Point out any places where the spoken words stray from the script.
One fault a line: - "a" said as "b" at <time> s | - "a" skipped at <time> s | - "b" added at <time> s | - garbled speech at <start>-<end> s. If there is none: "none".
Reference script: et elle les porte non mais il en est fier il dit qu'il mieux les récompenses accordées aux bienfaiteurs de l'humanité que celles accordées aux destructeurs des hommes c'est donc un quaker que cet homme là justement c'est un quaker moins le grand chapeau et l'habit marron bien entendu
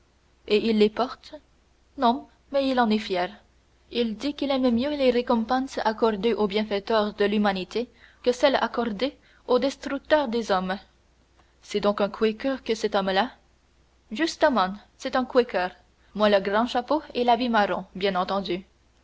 - "elle" said as "il" at 0.7 s
- "aime" added at 4.5 s